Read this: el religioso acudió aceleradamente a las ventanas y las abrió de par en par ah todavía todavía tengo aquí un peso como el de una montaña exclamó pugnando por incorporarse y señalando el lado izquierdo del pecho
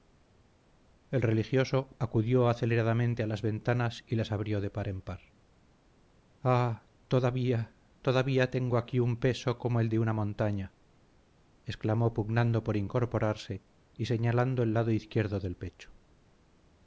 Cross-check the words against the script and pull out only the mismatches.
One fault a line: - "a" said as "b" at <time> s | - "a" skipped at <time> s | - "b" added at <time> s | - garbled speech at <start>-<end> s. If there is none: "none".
none